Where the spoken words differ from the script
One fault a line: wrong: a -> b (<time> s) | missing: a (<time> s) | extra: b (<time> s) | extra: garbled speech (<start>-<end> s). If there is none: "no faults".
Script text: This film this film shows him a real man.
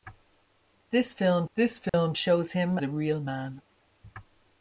no faults